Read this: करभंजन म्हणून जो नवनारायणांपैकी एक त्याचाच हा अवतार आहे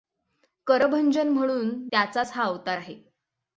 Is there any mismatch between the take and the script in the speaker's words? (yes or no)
yes